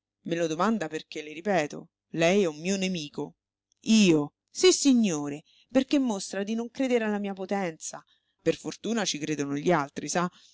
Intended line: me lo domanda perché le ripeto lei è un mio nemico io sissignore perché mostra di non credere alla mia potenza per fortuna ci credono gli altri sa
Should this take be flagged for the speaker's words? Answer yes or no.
no